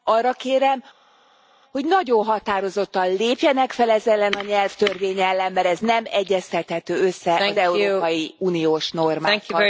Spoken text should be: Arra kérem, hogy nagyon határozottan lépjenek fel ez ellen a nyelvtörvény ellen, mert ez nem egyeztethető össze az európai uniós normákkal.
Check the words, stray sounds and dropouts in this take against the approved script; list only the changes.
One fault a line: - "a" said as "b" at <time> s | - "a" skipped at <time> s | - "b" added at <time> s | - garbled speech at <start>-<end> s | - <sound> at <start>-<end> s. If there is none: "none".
none